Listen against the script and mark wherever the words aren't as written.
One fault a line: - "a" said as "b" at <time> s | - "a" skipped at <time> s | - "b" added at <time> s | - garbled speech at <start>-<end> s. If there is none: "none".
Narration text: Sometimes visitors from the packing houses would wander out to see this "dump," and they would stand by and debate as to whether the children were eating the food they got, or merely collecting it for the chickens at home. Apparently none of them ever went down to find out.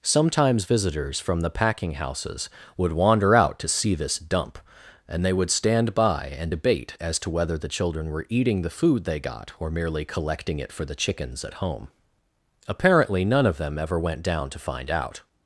none